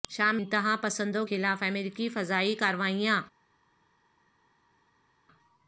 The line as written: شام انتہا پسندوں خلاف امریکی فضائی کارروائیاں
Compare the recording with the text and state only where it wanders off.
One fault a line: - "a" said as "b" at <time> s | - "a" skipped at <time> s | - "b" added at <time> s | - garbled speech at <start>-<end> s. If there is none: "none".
none